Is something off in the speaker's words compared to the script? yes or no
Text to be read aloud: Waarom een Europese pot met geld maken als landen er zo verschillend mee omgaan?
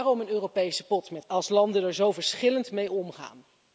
yes